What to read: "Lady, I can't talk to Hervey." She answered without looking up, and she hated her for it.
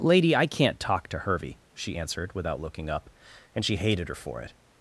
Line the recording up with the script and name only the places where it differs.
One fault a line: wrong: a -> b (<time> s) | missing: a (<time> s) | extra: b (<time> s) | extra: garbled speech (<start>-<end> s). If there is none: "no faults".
no faults